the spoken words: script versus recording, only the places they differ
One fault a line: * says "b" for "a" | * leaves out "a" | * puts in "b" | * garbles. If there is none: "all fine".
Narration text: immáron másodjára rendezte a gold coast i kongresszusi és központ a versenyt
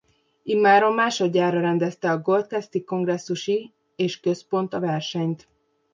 all fine